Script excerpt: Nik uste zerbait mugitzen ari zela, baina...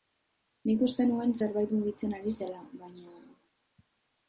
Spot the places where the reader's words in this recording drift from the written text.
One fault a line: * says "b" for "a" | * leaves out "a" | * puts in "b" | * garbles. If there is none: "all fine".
* puts in "nuen"